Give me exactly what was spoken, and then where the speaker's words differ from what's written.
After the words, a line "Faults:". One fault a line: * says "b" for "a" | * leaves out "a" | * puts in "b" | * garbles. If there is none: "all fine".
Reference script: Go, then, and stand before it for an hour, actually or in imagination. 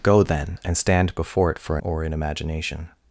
Go, then, and stand before it for an or in imagination.
Faults:
* leaves out "hour actually"